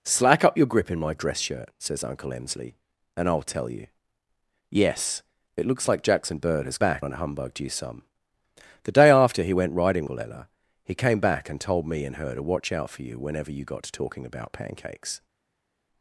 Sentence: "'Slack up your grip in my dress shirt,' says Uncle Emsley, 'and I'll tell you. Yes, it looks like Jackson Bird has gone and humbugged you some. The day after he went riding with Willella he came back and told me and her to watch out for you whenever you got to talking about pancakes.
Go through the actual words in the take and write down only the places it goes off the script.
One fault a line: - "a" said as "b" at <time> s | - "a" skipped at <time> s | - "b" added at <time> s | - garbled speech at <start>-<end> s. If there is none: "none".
- "gone" said as "back" at 6.8 s
- "with" skipped at 10.0 s